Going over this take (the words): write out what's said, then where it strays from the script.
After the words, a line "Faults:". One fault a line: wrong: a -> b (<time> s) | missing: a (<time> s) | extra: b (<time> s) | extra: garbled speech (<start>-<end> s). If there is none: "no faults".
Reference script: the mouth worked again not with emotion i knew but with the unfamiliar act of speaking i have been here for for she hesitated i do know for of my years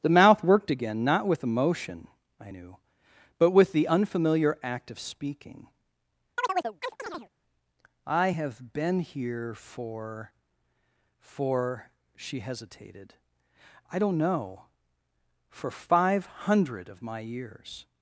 the mouth worked again not with emotion i knew but with the unfamiliar act of speaking i have been here for for she hesitated i don't know for five hundred of my years
Faults:
wrong: do -> don't (14.0 s)
extra: five hundred (15.7 s)